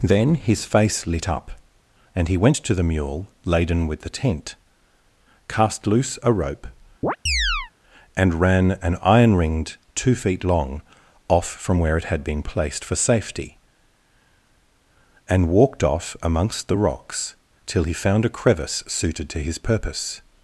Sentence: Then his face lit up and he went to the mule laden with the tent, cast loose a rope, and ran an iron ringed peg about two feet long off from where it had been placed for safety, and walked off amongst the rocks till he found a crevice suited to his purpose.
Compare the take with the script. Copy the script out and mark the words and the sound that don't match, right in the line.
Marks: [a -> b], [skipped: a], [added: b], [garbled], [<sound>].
Then his face lit up and he went to the mule laden with the tent, cast loose a rope, [chirp] and ran an iron ringed [skipped: peg about] two feet long off from where it had been placed for safety, and walked off amongst the rocks till he found a crevice suited to his purpose.